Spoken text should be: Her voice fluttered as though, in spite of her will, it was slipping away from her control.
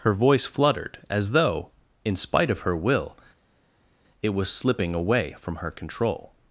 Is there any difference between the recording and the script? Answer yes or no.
no